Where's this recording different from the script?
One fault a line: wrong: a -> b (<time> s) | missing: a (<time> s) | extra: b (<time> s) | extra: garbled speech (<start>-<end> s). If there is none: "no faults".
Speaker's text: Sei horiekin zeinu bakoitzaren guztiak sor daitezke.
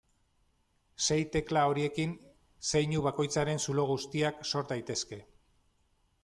extra: tekla (1.4 s)
extra: zulo (3.7 s)